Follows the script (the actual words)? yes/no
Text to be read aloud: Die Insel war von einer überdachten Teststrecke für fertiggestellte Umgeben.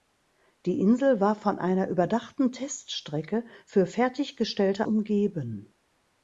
yes